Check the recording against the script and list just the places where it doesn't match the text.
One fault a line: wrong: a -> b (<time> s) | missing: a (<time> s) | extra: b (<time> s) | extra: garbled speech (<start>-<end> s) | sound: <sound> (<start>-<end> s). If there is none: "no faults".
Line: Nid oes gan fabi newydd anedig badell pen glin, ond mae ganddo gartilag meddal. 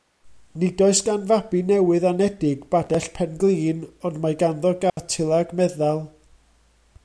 sound: dropout (4.9-5.0 s)